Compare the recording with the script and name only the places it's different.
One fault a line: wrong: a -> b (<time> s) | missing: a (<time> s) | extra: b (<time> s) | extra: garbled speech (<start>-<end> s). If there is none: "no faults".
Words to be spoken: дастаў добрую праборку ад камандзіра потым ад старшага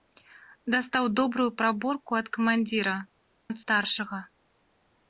missing: потым (3.0 s)